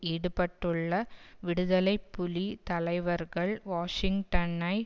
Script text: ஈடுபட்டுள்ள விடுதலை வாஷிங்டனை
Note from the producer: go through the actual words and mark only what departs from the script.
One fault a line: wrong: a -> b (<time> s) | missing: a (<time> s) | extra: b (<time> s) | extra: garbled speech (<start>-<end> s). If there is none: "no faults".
extra: புலி தலைவர்கள் (2.1 s)